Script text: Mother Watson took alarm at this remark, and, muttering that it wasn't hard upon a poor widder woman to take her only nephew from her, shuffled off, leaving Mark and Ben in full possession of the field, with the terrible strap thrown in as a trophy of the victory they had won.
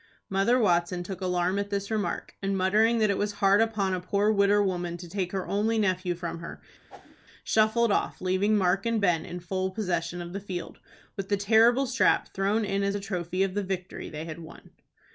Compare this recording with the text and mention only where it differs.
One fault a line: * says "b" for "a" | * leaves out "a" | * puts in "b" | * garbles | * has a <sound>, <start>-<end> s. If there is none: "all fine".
* says "was" for "wasn't"
* has a whoosh, 6.9-7.2 s